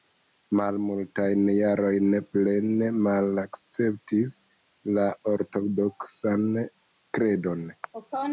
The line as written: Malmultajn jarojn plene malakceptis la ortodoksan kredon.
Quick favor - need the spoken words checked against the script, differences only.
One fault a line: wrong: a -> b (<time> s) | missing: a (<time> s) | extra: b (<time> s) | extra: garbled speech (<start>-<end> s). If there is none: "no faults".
no faults